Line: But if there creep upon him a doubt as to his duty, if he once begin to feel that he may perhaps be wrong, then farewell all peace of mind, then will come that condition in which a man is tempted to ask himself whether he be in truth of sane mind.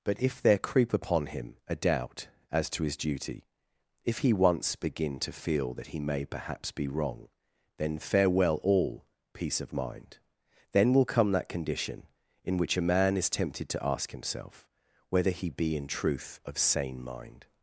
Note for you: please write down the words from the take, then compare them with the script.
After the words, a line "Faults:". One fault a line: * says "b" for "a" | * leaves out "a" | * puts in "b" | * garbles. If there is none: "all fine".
But if there creep upon him a doubt as to his duty, if he once begin to feel that he may perhaps be wrong, then farewell all peace of mind, then will come that condition in which a man is tempted to ask himself whether he be in truth of sane mind.
Faults:
all fine